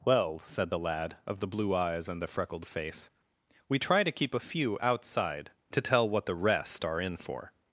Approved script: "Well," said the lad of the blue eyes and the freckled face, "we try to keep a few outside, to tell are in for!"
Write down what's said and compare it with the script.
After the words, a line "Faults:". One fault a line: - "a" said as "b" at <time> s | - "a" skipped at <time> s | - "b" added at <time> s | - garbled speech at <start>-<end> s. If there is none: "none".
"Well," said the lad of the blue eyes and the freckled face, "we try to keep a few outside, to tell what the rest are in for!"
Faults:
- "what the rest" added at 6.1 s